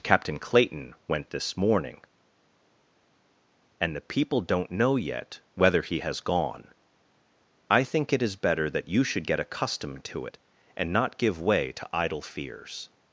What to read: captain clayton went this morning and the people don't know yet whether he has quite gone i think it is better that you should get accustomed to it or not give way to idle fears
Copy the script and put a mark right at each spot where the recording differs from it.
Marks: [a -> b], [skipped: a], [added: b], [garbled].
captain clayton went this morning and the people don't know yet whether he has [skipped: quite] gone i think it is better that you should get accustomed to it [or -> and] not give way to idle fears